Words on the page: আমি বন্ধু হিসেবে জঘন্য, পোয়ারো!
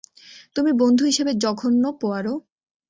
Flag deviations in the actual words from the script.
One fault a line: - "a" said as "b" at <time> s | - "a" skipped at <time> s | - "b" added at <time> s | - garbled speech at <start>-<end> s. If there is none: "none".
- "আমি" said as "তুমি" at 0.6 s